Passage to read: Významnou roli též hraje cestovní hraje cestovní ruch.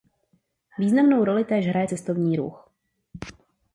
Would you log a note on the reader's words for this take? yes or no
yes